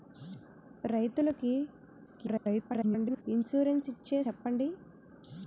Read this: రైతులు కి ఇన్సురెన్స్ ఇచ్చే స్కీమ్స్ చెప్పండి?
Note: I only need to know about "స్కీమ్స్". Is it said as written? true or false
false